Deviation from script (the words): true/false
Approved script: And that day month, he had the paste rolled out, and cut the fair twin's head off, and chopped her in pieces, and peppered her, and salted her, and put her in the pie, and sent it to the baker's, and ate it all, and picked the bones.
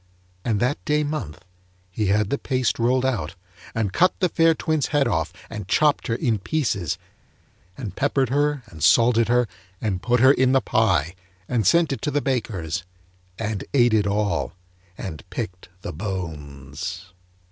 false